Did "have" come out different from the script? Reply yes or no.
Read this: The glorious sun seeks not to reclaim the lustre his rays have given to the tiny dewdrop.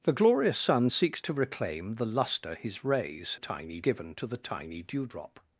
yes